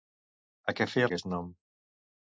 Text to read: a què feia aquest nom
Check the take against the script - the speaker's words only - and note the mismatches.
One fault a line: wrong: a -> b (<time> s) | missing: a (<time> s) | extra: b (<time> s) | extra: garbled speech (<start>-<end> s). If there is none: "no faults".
no faults